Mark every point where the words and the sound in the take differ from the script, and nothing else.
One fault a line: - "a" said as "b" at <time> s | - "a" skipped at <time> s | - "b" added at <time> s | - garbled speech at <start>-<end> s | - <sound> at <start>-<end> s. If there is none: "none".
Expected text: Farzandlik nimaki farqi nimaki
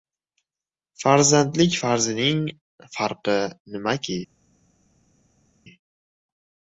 - "nimaki" said as "farzining" at 1.8 s